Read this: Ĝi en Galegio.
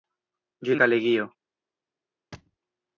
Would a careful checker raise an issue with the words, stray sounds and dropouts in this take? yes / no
yes